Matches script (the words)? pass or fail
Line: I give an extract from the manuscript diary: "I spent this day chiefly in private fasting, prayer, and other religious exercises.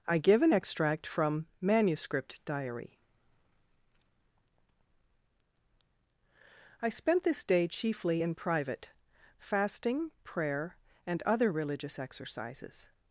fail